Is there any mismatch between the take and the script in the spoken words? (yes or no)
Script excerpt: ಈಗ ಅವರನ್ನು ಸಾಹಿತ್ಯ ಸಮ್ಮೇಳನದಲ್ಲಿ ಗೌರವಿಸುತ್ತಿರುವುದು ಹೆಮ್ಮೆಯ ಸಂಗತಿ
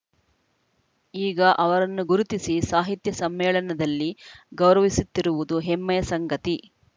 yes